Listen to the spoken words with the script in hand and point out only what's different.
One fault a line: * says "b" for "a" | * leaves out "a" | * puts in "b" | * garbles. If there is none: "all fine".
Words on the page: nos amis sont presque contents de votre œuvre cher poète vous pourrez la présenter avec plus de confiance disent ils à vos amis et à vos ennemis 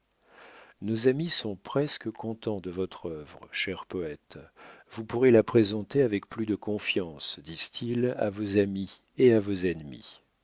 all fine